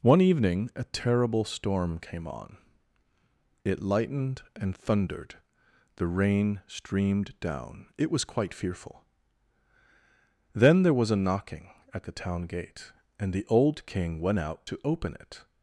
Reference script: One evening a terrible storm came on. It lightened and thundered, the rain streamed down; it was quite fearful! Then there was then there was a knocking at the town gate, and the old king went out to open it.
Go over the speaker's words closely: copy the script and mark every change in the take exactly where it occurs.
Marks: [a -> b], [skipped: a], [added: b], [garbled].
One evening a terrible storm came on. It lightened and thundered, the rain streamed down; it was quite fearful! Then there was [skipped: then there was] a knocking at the town gate, and the old king went out to open it.